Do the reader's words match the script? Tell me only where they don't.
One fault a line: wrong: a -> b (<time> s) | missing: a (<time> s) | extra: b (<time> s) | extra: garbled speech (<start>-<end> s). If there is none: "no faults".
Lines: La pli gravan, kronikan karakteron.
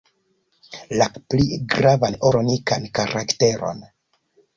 no faults